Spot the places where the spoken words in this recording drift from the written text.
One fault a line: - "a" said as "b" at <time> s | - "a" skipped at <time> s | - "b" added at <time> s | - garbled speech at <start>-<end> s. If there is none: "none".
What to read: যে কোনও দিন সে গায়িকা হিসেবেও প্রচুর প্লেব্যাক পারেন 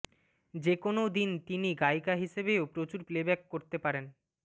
- "সে" said as "তিনি" at 1.5 s
- "করতে" added at 3.5 s